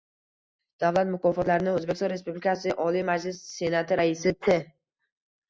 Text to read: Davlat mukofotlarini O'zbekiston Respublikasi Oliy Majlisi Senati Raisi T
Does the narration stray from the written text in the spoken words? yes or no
no